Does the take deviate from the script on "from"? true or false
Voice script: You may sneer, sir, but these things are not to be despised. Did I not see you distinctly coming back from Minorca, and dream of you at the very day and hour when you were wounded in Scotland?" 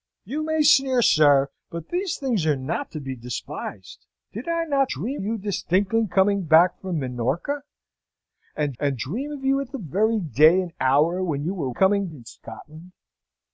false